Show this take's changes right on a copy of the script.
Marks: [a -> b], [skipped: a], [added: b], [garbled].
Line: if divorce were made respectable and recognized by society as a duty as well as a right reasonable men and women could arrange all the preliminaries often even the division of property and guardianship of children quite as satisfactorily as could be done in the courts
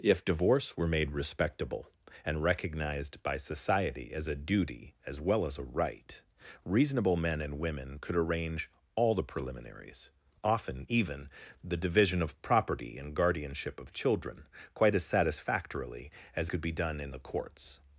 if divorce were made respectable and recognized by society as a duty as well as a right reasonable men and women could arrange all the preliminaries often even the division of property and guardianship of children quite as satisfactorily as could be done in the courts